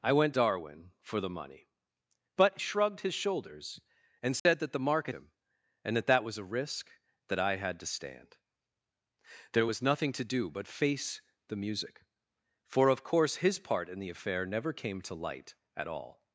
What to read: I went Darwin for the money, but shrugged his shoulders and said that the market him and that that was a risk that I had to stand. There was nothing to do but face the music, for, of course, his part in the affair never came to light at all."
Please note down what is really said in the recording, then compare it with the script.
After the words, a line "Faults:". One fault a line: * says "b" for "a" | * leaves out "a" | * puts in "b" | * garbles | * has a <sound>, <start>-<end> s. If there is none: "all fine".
I went Darwin for the money, but shrugged his shoulders and said that the market him and that that was a risk that I had to stand. There was nothing to do but face the music, for, of course, his part in the affair never came to light at all."
Faults:
* has a dropout, 4.4-4.5 s